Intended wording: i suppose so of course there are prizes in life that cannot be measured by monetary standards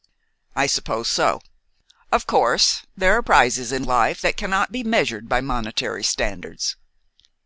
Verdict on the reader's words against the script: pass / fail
pass